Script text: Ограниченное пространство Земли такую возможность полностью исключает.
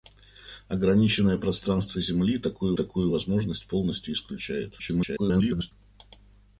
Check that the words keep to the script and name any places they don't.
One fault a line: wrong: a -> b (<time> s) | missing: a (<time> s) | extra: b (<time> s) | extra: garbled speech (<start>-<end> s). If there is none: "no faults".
extra: такую (2.7 s)
extra: garbled speech (4.8-5.7 s)